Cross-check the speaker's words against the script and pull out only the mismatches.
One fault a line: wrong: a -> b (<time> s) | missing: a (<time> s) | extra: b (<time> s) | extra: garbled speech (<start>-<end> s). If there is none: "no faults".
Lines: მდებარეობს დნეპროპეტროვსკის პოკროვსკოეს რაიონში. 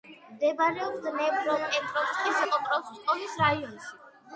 no faults